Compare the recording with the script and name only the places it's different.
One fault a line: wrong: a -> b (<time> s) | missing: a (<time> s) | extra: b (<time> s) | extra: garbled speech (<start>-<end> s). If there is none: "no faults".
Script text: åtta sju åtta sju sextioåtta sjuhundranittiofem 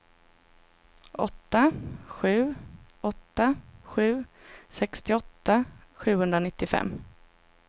no faults